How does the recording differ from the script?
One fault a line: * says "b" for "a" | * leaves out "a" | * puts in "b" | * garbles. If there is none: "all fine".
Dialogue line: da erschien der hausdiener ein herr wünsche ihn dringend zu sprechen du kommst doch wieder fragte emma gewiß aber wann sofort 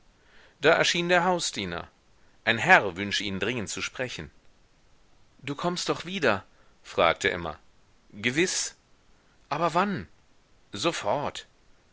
all fine